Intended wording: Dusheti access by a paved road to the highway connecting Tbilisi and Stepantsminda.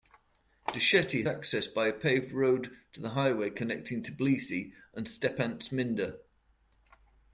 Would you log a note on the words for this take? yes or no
no